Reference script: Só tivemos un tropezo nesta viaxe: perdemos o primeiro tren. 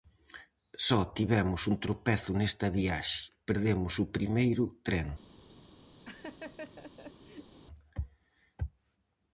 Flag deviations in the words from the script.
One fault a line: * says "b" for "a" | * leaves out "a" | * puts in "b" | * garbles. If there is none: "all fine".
all fine